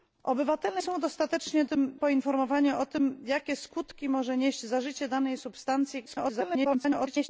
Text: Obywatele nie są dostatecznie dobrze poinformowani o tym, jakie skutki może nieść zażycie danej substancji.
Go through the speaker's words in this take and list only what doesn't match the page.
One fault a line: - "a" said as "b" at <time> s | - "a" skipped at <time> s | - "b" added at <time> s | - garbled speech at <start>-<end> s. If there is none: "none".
- "nie" skipped at 0.8 s
- "dobrze" said as "tym" at 1.6 s
- garbled speech at 6.1-7.3 s